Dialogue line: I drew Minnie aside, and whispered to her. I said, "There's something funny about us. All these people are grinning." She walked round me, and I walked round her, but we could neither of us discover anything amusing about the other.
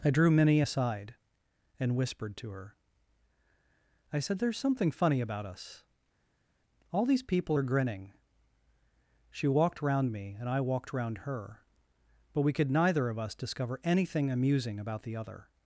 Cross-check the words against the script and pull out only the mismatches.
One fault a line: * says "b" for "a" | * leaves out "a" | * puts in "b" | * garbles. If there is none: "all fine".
all fine